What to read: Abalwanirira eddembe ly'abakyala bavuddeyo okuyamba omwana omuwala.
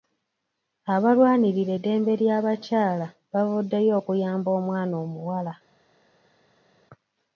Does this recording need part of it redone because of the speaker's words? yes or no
no